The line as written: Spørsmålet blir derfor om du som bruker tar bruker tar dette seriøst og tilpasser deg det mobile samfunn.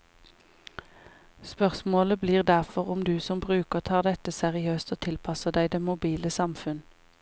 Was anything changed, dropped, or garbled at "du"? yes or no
no